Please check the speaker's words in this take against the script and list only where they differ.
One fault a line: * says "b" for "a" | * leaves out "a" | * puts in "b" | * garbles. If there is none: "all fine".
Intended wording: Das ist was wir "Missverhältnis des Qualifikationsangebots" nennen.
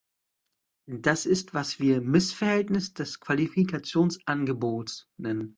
all fine